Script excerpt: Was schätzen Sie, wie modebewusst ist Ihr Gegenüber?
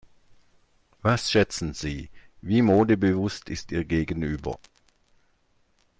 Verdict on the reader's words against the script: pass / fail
pass